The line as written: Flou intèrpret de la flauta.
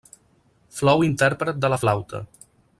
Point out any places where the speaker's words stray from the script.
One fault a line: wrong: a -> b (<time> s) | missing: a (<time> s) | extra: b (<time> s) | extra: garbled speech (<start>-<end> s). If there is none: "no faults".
no faults